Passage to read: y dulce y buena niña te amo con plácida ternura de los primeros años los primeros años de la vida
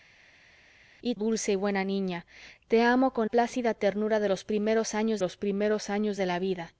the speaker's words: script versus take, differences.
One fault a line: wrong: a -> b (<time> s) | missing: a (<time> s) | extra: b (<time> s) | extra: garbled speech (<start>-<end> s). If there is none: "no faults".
no faults